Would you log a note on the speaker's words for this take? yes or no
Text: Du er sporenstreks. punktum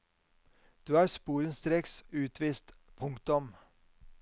yes